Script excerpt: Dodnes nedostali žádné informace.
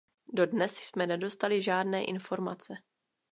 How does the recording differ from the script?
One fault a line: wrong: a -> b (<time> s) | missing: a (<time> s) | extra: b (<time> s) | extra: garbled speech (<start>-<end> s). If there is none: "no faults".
extra: jsme (0.7 s)